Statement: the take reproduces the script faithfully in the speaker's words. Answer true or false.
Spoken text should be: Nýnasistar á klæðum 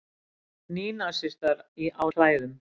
true